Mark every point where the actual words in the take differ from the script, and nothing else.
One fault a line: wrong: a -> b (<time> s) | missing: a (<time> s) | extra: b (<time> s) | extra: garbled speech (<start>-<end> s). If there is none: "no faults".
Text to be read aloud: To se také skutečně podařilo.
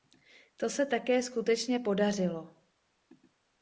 no faults